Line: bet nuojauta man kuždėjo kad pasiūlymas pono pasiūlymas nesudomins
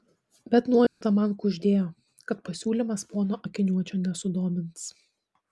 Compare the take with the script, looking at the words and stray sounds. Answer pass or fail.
fail